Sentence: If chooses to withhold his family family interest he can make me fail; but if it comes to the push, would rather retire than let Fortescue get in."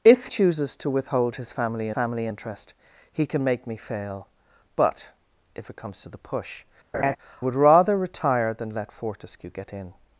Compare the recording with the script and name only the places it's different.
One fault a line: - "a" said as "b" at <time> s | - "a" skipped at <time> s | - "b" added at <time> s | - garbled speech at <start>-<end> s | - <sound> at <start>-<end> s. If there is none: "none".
- laugh at 6.9-7.2 s